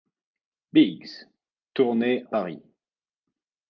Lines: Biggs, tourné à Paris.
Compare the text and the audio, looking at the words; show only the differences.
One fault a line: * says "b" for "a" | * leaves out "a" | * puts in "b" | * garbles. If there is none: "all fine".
* leaves out "à"